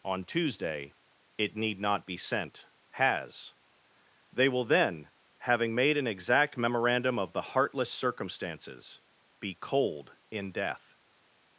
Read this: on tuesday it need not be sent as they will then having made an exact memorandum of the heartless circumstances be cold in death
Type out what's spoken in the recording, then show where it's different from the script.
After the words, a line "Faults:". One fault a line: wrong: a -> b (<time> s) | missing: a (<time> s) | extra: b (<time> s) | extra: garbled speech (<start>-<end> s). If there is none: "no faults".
on tuesday it need not be sent has they will then having made an exact memorandum of the heartless circumstances be cold in death
Faults:
wrong: as -> has (2.9 s)